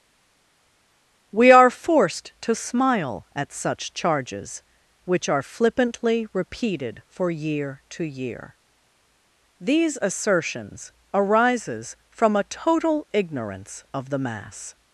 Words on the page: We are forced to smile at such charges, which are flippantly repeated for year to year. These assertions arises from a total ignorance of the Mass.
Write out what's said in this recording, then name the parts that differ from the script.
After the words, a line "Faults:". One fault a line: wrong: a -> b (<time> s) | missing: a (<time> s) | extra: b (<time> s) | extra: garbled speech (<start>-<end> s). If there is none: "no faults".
We are forced to smile at such charges, which are flippantly repeated for year to year. These assertions arises from a total ignorance of the Mass.
Faults:
no faults